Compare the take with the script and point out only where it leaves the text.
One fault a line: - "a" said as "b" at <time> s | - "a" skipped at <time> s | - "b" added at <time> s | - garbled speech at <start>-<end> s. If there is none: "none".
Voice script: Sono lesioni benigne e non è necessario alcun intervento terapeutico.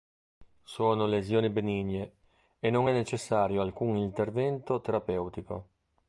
none